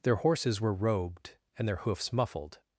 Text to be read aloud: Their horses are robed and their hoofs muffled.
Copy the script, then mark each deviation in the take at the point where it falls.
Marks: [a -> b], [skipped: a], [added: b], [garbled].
Their horses [are -> were] robed and their hoofs muffled.